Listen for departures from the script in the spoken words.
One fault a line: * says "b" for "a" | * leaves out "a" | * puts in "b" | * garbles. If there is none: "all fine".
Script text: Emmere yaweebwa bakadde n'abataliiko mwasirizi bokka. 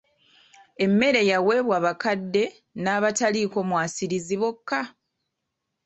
all fine